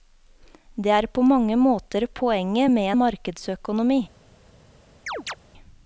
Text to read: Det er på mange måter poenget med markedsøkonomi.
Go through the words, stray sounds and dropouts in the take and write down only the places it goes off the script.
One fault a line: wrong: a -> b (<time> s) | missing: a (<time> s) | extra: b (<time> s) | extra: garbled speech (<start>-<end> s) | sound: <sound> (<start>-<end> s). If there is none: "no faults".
sound: chirp (5.1-5.4 s)